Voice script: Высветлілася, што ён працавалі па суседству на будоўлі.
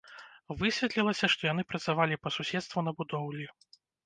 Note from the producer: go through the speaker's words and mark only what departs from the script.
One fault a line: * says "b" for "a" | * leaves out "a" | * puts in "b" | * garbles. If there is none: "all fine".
* says "яны" for "ён"